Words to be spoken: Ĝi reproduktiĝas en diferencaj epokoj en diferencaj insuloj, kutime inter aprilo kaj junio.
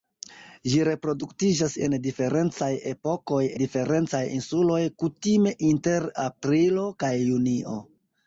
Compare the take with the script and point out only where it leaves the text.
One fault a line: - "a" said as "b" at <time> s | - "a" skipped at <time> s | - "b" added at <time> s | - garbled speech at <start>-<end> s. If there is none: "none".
- "en" skipped at 3.4 s